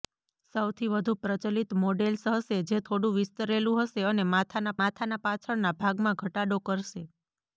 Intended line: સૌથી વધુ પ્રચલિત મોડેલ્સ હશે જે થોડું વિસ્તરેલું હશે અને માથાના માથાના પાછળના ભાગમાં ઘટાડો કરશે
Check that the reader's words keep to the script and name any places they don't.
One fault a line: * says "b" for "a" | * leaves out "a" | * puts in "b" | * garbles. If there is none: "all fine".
all fine